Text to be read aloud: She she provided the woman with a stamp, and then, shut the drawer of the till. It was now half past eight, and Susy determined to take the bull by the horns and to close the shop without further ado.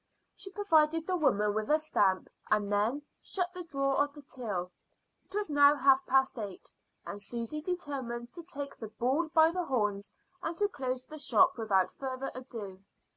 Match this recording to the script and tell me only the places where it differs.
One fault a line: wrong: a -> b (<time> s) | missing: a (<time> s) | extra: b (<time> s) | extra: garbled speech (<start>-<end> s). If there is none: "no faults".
missing: she (0.5 s)